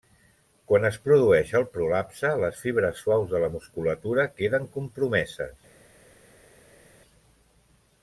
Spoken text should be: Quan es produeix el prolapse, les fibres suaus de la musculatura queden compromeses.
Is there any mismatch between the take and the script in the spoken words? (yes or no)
no